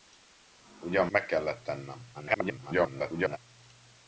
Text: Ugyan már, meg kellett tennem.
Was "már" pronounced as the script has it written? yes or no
no